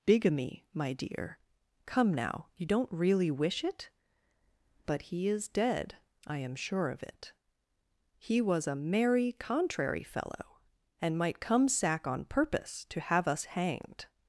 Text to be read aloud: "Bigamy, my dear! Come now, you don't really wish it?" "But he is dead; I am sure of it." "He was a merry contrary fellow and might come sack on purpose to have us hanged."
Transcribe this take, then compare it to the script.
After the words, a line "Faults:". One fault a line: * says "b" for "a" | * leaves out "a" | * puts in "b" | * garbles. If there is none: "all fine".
"Bigamy, my dear! Come now, you don't really wish it?" "But he is dead; I am sure of it." "He was a merry contrary fellow and might come sack on purpose to have us hanged."
Faults:
all fine